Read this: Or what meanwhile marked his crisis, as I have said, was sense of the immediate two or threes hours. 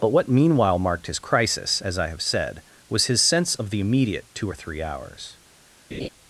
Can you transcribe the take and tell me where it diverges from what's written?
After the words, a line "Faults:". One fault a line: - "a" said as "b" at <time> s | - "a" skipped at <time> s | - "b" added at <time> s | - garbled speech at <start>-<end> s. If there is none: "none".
But what meanwhile marked his crisis, as I have said, was his sense of the immediate two or three hours.
Faults:
- "Or" said as "But" at 0.0 s
- "his" added at 3.1 s
- "threes" said as "three" at 4.5 s